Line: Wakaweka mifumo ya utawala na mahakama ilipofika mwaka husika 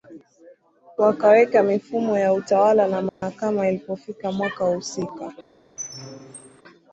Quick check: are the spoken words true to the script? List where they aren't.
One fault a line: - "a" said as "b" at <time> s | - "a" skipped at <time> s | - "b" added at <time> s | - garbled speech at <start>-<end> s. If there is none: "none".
none